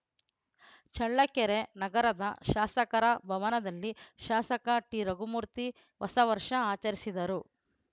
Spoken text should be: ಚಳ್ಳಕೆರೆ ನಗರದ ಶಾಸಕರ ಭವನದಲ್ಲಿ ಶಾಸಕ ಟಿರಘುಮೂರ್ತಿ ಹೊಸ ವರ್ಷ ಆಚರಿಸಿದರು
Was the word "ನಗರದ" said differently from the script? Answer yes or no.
no